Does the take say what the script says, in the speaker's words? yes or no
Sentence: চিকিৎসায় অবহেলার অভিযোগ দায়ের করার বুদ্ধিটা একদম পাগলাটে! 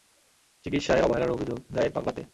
no